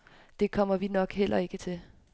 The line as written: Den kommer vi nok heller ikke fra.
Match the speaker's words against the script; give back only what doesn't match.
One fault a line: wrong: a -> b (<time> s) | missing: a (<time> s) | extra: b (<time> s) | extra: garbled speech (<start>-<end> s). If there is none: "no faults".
wrong: Den -> Det (0.4 s)
wrong: fra -> til (1.6 s)